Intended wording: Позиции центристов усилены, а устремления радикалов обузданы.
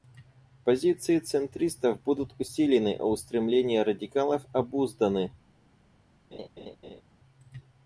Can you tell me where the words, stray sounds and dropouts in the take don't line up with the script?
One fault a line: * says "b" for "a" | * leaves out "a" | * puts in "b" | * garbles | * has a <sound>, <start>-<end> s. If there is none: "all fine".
* puts in "будут"
* has a laugh, 6.3-7.0 s